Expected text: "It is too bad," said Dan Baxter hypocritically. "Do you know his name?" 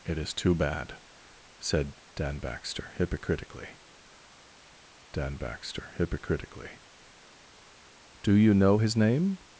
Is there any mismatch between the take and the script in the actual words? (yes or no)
yes